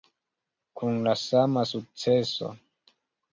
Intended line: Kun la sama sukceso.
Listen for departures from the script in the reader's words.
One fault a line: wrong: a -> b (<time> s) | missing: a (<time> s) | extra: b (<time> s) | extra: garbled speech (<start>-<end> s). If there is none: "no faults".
no faults